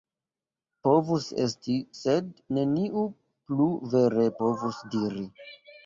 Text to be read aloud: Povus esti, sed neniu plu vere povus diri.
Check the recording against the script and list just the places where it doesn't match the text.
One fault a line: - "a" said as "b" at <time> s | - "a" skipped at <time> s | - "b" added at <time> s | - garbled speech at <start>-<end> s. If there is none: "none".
none